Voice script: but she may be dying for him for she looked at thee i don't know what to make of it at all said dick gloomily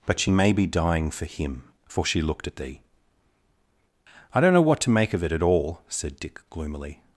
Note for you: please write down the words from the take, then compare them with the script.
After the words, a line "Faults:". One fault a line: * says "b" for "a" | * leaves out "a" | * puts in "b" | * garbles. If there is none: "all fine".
but she may be dying for him for she looked at thee i don't know what to make of it at all said dick gloomily
Faults:
all fine